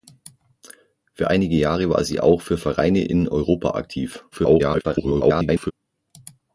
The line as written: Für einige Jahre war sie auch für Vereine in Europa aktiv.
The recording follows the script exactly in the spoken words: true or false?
false